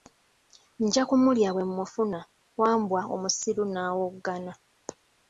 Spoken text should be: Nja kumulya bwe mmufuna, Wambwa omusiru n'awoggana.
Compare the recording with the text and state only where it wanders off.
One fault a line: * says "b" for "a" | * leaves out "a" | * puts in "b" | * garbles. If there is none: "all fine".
all fine